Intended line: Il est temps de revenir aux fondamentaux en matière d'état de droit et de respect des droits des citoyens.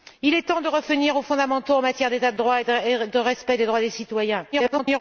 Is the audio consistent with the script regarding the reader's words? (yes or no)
no